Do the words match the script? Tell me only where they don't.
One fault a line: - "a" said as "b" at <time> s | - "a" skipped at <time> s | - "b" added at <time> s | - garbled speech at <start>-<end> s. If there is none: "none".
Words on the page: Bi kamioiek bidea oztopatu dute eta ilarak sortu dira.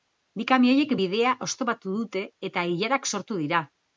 none